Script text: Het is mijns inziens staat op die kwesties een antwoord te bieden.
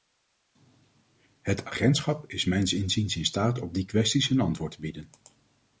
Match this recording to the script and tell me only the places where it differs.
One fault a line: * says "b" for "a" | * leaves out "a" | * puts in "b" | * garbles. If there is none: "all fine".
* puts in "agentschap"
* puts in "in"